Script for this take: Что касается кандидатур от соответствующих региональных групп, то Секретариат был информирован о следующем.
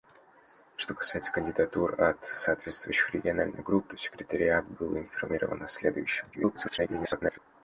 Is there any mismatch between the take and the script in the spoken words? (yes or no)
yes